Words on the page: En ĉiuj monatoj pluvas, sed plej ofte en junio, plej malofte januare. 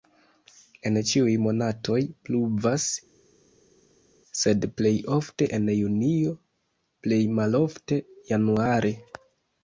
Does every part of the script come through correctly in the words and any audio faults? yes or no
yes